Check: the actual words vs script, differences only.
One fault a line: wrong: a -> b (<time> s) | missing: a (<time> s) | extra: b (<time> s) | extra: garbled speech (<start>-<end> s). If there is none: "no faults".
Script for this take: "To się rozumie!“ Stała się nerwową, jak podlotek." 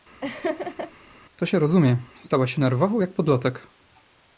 no faults